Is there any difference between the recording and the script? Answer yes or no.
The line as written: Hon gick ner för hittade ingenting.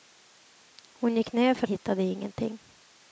no